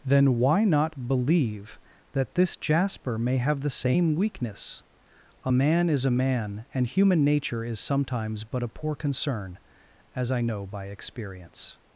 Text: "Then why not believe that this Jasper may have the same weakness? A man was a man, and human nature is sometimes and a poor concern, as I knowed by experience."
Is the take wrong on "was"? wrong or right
wrong